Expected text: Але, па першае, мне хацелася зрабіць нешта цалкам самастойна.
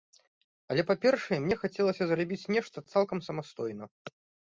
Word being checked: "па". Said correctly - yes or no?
yes